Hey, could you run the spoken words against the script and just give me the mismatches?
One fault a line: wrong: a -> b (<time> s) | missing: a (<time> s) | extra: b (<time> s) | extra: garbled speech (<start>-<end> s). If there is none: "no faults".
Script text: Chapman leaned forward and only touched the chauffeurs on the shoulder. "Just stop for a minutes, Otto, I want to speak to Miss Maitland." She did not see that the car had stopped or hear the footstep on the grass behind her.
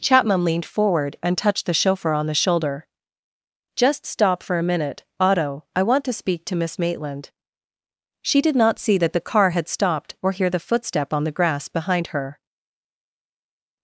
missing: only (1.4 s)
wrong: chauffeurs -> chauffeur (1.7 s)
wrong: minutes -> minute (4.6 s)